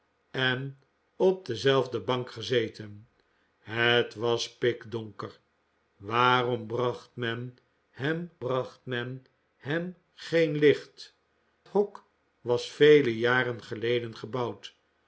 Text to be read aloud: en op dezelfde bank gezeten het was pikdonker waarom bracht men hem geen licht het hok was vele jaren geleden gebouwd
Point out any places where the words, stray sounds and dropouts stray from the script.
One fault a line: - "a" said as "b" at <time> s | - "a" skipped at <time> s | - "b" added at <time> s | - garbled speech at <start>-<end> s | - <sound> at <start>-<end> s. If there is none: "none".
- "bracht men hem" added at 8.4 s
- "het" skipped at 11.1 s